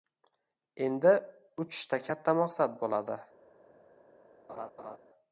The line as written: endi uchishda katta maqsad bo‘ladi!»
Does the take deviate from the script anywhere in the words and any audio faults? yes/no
yes